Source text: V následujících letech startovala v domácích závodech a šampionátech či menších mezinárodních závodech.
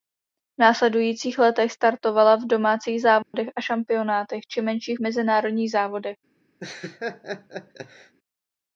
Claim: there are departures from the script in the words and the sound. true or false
true